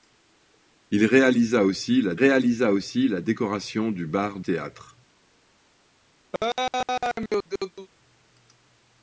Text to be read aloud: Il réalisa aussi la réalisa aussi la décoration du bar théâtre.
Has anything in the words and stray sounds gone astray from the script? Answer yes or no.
yes